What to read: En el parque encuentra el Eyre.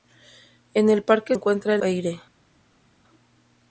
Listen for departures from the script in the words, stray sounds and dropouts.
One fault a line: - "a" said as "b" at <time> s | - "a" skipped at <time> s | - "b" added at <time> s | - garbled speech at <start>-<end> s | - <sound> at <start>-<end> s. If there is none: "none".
none